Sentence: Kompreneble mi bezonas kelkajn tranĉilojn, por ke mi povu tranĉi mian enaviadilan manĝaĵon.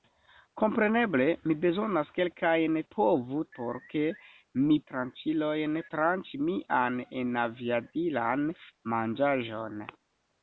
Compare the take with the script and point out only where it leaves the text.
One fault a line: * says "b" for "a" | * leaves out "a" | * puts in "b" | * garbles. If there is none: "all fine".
* says "povu" for "tranĉilojn"
* says "tranĉilojn" for "povu"